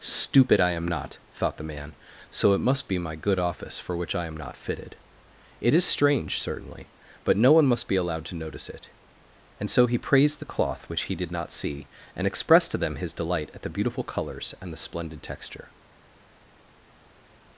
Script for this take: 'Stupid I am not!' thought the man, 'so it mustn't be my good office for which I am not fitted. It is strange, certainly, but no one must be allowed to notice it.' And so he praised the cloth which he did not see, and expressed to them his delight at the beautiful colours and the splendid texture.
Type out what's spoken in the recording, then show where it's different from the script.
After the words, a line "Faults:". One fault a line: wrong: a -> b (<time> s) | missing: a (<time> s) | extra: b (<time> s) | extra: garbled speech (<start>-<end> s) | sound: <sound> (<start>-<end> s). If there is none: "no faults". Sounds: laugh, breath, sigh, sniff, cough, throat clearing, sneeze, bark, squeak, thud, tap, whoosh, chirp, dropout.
'Stupid I am not!' thought the man, 'so it must be my good office for which I am not fitted. It is strange, certainly, but no one must be allowed to notice it.' And so he praised the cloth which he did not see, and expressed to them his delight at the beautiful colours and the splendid texture.
Faults:
wrong: mustn't -> must (2.7 s)